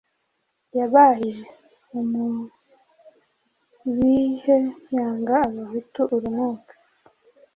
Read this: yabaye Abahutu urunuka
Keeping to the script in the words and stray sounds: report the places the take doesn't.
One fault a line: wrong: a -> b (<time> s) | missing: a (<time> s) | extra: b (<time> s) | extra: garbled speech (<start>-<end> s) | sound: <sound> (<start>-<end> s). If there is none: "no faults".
extra: umubihe yanga (4.0 s)